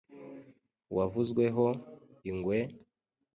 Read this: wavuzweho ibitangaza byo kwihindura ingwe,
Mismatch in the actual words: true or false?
true